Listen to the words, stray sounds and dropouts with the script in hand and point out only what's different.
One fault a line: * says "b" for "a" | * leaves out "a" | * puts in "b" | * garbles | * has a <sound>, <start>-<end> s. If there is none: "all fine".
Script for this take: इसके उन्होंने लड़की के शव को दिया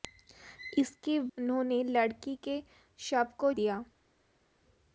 all fine